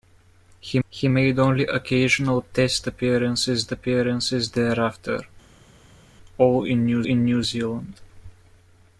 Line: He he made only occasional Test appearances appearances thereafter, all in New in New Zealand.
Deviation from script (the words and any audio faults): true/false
false